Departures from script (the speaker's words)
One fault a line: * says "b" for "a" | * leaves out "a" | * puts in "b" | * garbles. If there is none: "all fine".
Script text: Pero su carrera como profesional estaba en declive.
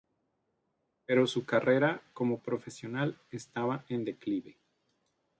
all fine